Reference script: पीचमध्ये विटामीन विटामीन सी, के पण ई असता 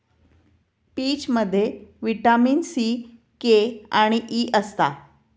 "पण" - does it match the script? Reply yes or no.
no